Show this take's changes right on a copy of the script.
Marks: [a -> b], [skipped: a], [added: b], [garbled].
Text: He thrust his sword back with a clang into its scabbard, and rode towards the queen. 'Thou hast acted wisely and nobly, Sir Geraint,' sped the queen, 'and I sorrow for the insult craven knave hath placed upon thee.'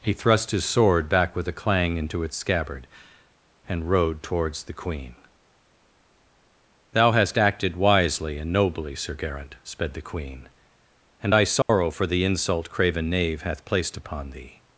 He thrust his sword back with a clang into its scabbard, and rode towards the queen. 'Thou hast acted wisely and nobly, Sir Geraint,' sped the queen, 'and I sorrow for the insult craven knave hath placed upon thee.'